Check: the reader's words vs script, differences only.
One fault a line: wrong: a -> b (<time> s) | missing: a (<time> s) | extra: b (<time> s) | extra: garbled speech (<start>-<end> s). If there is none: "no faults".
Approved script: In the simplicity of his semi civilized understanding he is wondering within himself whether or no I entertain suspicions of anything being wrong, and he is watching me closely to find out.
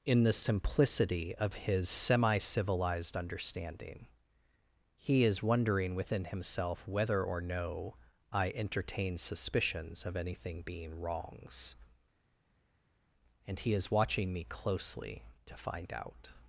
wrong: wrong -> wrongs (11.0 s)